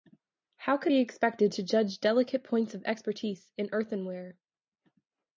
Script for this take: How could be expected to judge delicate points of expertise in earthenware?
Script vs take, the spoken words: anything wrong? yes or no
no